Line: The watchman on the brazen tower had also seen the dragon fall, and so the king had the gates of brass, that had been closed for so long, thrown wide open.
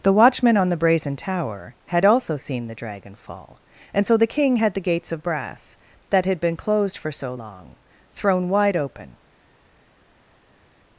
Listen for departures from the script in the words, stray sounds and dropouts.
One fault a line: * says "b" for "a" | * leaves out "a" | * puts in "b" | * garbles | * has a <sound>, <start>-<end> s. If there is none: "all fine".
all fine